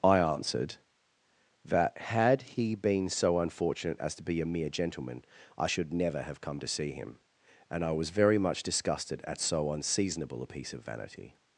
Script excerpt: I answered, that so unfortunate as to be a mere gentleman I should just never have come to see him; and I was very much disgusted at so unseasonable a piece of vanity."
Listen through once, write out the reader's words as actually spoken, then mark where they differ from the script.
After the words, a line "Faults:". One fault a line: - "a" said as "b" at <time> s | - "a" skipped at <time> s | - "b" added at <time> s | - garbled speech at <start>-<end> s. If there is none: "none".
I answered, that had he been so unfortunate as to be a mere gentleman I should never have come to see him; and I was very much disgusted at so unseasonable a piece of vanity."
Faults:
- "had he been" added at 2.0 s
- "just" skipped at 5.9 s